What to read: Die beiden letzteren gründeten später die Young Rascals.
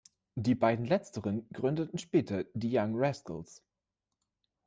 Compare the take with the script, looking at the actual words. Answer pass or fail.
pass